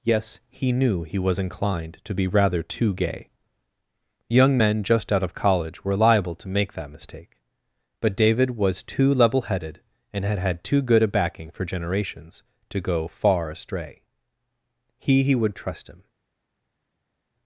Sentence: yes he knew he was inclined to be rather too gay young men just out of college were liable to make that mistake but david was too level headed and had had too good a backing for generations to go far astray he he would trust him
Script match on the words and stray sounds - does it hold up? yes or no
yes